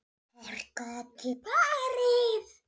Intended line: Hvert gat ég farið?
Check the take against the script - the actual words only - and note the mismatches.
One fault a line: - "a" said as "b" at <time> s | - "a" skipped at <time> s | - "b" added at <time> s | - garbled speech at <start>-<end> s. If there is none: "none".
none